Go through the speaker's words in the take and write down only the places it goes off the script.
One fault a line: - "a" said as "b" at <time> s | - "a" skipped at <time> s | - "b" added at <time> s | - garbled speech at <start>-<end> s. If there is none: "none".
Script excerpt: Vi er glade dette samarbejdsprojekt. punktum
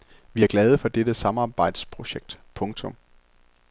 - "for" added at 0.8 s